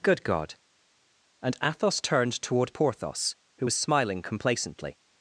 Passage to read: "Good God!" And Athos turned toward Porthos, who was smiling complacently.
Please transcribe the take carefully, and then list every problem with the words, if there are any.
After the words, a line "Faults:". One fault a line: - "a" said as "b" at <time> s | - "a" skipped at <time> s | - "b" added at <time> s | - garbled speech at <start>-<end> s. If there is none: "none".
"Good God!" And Athos turned toward Porthos, who was smiling complacently.
Faults:
none